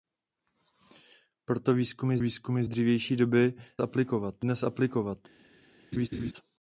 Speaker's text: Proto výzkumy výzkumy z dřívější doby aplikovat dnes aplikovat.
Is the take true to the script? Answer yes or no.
yes